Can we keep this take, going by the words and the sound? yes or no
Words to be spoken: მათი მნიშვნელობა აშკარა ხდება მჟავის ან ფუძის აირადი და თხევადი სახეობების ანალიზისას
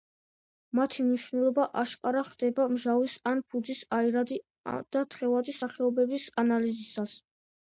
yes